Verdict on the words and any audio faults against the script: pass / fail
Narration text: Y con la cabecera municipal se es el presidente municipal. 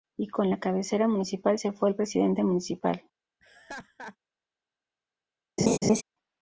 fail